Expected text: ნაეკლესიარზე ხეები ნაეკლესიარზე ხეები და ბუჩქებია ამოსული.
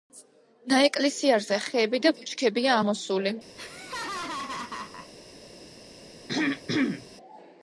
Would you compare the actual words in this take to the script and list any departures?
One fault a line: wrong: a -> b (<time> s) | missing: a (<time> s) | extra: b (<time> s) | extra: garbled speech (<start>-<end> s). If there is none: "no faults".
missing: ნაეკლესიარზე ხეები (2.0 s)